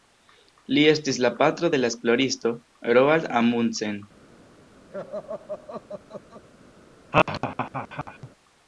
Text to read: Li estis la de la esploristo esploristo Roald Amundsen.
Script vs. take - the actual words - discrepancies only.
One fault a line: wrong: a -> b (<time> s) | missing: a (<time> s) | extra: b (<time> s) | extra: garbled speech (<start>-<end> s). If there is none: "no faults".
extra: patro (1.4 s)
missing: esploristo (2.5 s)